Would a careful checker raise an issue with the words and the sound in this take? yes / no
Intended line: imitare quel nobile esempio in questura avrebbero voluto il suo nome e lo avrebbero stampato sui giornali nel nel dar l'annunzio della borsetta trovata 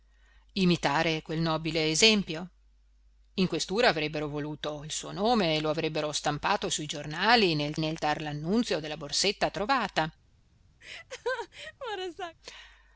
yes